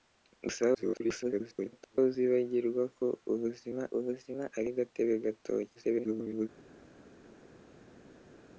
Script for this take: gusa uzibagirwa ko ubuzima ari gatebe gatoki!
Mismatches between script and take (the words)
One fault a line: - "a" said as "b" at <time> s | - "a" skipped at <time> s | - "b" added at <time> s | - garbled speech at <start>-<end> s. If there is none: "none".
- garbled speech at 0.7-2.0 s
- "ubuzima" added at 4.0 s
- garbled speech at 5.7-6.5 s